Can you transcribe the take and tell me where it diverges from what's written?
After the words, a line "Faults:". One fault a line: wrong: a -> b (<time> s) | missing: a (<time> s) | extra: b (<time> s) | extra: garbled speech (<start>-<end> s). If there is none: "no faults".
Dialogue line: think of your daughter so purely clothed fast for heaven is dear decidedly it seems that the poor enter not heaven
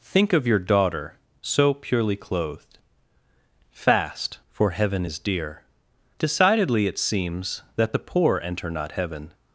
think of your daughter so purely clothed fast for heaven is dear decidedly it seems that the poor enter not heaven
Faults:
no faults